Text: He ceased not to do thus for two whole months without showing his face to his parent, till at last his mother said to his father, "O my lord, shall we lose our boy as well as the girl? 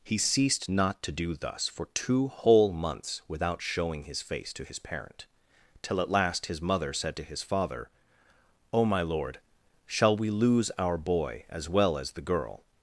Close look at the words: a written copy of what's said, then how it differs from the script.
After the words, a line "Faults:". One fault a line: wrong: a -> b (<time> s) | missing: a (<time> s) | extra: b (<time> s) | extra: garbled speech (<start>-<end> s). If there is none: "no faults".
He ceased not to do thus for two whole months without showing his face to his parent, till at last his mother said to his father, "O my lord, shall we lose our boy as well as the girl?
Faults:
no faults